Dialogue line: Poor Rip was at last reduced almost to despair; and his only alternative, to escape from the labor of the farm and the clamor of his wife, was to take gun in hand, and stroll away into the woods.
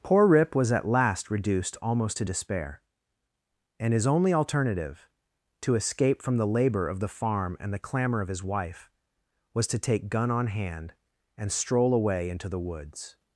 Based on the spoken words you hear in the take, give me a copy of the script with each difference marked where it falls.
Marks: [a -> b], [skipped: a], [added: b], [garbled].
Poor Rip was at last reduced almost to despair; and his only alternative, to escape from the labor of the farm and the clamor of his wife, was to take gun [in -> on] hand, and stroll away into the woods.